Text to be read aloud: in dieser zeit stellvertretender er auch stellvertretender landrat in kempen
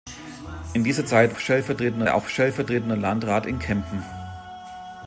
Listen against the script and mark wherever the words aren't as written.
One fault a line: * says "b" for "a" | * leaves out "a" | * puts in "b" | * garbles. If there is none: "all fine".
all fine